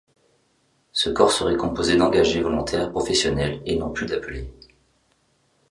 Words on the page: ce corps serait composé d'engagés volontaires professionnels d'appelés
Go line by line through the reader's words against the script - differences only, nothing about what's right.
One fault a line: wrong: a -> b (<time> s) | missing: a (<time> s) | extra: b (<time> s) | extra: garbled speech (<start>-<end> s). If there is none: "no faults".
extra: et non plus (3.6 s)